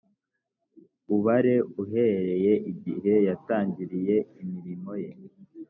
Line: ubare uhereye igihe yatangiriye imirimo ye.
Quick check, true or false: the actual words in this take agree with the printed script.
true